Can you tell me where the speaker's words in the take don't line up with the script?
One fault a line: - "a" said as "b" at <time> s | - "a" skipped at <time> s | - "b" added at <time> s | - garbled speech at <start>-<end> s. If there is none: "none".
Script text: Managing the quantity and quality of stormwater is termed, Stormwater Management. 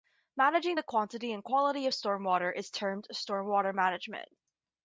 none